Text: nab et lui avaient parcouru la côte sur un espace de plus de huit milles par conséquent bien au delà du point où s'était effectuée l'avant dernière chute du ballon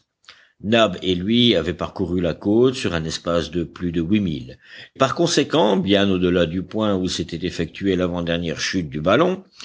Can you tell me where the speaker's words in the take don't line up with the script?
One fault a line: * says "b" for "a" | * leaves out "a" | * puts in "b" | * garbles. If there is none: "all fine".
all fine